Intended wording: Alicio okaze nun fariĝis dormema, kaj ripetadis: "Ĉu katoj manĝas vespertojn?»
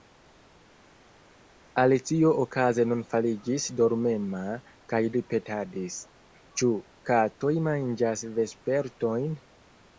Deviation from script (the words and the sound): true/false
false